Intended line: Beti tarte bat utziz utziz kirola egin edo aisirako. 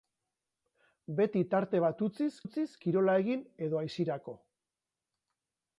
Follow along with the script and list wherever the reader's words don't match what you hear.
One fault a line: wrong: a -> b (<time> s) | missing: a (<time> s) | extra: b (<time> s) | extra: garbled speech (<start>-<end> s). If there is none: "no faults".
no faults